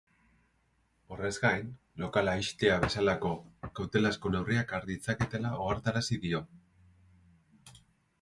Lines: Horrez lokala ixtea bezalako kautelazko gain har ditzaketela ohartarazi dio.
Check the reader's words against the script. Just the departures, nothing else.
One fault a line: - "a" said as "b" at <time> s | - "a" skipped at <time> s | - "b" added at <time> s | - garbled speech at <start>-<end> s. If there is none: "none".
- "gain" added at 1.4 s
- "gain" said as "neurriak" at 4.3 s